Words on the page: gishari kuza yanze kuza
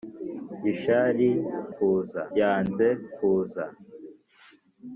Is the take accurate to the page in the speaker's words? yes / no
yes